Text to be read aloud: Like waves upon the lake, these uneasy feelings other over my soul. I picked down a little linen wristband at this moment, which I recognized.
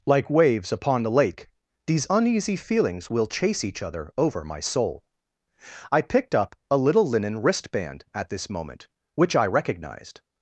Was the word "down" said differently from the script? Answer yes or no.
yes